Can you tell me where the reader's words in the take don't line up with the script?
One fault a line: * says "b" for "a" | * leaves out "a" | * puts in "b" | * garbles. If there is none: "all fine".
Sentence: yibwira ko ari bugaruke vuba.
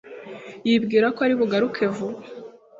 all fine